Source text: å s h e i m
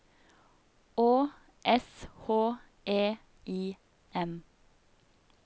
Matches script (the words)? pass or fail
pass